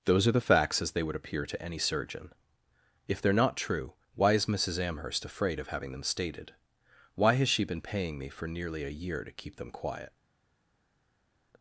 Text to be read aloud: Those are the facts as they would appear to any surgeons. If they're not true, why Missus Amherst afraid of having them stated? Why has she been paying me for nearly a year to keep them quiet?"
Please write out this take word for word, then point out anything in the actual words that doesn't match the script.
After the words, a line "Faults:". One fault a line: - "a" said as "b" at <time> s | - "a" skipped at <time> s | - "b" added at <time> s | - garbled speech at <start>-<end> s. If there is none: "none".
Those are the facts as they would appear to any surgeon. If they're not true, why is Missus Amherst afraid of having them stated? Why has she been paying me for nearly a year to keep them quiet?"
Faults:
- "surgeons" said as "surgeon" at 1.8 s
- "is" added at 4.3 s